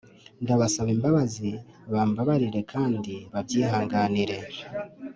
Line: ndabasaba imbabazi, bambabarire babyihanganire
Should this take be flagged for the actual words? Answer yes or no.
yes